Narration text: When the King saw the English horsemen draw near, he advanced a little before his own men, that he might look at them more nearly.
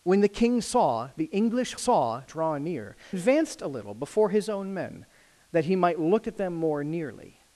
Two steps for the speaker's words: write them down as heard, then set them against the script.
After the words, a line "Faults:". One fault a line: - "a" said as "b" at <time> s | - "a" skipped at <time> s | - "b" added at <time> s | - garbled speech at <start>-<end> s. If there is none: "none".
When the King saw the English saw draw near, advanced a little before his own men, that he might look at them more nearly.
Faults:
- "horsemen" said as "saw" at 1.7 s
- "he" skipped at 3.0 s